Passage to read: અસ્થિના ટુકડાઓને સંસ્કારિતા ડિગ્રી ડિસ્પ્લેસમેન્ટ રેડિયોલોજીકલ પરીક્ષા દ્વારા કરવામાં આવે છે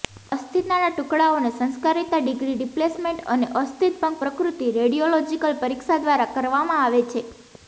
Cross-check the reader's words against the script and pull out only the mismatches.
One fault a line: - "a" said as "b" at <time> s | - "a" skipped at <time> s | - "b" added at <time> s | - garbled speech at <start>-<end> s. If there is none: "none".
- "અને અસ્થિભંગ પ્રકૃતિ" added at 3.4 s